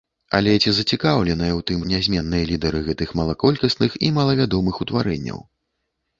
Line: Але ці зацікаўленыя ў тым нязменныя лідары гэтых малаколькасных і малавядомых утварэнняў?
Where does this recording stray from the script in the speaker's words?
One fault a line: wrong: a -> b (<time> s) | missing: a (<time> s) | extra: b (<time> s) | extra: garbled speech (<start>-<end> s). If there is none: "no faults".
no faults